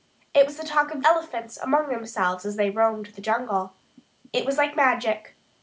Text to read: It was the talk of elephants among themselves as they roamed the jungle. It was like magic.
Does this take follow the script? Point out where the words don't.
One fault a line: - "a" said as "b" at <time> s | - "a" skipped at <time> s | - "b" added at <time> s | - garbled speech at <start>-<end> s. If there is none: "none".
none